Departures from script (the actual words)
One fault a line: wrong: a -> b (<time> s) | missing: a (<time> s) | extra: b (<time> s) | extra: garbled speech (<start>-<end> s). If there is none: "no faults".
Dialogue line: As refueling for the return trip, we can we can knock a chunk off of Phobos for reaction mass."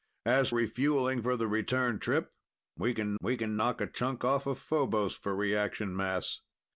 no faults